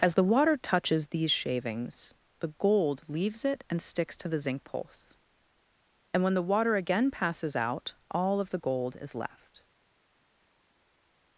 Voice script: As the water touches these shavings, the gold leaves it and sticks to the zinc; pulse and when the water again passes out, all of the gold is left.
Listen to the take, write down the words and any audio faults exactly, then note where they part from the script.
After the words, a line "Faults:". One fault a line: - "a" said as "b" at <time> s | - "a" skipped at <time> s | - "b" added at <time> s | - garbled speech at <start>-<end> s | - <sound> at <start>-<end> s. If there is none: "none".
As the water touches these shavings, the gold leaves it and sticks to the zinc; pulse and when the water again passes out, all of the gold is left.
Faults:
none